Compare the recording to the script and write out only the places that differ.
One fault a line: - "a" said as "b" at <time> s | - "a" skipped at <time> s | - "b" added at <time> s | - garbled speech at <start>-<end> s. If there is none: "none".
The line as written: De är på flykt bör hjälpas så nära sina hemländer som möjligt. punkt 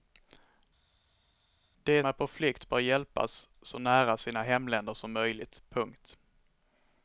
none